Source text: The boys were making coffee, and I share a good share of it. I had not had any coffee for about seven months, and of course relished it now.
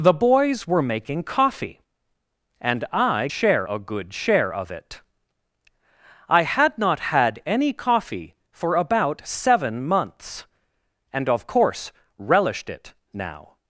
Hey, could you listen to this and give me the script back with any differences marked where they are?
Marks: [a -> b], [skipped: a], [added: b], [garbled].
The boys were making coffee, and I share a good share of it. I had not had any coffee for about seven months, and of course relished it now.